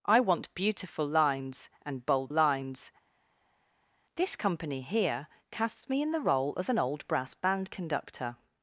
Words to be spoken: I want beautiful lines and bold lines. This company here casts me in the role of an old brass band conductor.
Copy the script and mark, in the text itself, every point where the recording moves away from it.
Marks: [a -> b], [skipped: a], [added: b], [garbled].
I want beautiful lines and bold lines. This company here casts me in the role of an old brass band conductor.